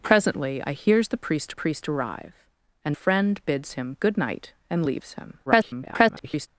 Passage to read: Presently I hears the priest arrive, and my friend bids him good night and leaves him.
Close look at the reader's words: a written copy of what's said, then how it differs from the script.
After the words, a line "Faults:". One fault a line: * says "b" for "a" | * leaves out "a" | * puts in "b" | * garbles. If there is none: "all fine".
Presently I hears the priest priest arrive, and friend bids him good night and leaves him. [garbled]
Faults:
* puts in "priest"
* leaves out "my"
* garbles